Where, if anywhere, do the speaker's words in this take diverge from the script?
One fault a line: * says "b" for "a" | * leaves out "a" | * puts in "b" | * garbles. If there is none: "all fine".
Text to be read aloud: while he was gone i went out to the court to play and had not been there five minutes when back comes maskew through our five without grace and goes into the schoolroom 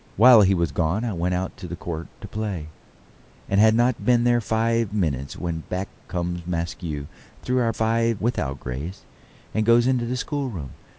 all fine